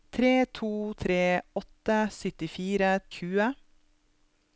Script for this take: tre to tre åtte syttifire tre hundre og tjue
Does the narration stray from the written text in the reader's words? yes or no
yes